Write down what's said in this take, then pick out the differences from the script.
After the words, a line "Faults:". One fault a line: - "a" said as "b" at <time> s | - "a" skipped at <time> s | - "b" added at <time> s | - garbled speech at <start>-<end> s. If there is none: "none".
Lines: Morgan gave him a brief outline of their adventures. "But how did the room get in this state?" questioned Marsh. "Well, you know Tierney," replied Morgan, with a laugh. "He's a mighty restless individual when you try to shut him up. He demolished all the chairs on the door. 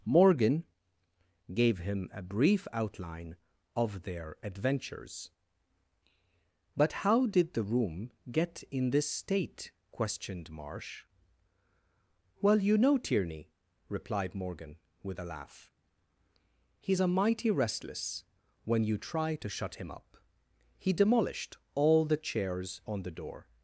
Morgan gave him a brief outline of their adventures. "But how did the room get in this state?" questioned Marsh. "Well, you know Tierney," replied Morgan, with a laugh. "He's a mighty restless when you try to shut him up. He demolished all the chairs on the door.
Faults:
- "individual" skipped at 18.2 s